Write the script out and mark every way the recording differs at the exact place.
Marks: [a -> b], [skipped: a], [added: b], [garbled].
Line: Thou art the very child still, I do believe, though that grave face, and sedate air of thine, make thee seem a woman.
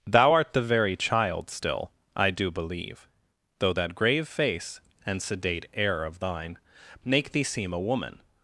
Thou art the very child still, I do believe, though that grave face, and sedate air of thine, make thee seem a woman.